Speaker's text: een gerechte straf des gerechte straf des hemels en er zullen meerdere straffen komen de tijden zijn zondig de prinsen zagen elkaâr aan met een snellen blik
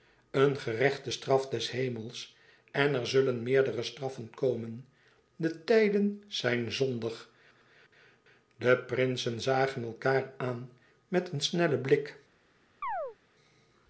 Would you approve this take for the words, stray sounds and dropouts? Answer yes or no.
no